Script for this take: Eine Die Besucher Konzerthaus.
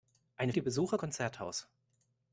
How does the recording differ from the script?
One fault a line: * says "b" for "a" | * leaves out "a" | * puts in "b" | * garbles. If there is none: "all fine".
all fine